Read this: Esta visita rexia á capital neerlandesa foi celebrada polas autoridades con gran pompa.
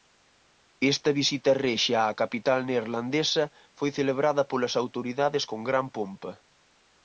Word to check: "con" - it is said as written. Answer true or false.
true